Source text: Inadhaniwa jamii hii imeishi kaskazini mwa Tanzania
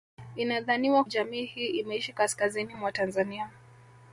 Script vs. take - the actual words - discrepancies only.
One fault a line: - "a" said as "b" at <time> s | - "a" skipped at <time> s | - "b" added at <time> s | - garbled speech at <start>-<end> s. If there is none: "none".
none